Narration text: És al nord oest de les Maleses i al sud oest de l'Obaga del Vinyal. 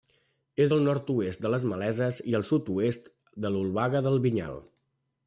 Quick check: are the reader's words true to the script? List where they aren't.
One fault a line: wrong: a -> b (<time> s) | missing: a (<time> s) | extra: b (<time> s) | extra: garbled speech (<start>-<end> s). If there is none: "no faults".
no faults